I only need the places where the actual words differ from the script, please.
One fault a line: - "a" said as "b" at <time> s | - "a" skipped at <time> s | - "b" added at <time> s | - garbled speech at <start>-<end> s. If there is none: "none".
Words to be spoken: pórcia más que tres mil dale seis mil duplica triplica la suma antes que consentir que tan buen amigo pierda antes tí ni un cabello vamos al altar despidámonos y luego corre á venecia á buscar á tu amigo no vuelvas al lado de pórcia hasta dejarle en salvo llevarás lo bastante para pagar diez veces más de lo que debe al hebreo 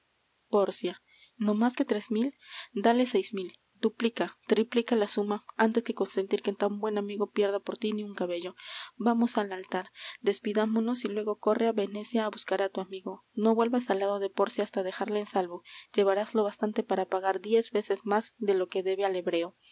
- "no" added at 1.4 s
- "antes" said as "por" at 7.6 s